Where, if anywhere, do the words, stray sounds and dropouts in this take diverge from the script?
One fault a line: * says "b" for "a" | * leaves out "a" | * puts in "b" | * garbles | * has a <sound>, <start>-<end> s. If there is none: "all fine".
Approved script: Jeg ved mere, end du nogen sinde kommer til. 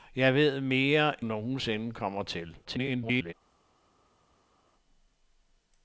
* leaves out "end du"
* garbles